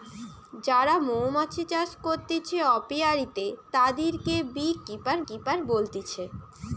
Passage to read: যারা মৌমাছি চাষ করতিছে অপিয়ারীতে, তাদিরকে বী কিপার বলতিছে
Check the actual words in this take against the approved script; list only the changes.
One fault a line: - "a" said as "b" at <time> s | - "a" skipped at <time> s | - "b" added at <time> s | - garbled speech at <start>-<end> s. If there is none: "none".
- "কিপার" added at 5.3 s